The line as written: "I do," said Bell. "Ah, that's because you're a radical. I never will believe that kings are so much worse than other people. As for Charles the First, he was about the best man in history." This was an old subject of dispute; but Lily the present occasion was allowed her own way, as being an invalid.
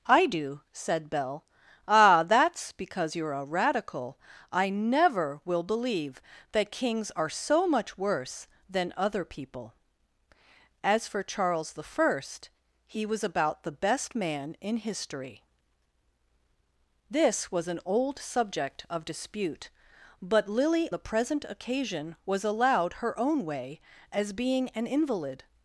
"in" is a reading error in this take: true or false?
false